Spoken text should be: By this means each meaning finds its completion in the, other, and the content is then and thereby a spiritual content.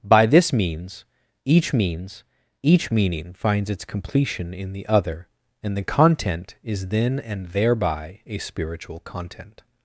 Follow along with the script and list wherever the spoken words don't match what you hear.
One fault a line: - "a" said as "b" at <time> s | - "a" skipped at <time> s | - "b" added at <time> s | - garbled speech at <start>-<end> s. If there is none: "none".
- "means each" added at 1.7 s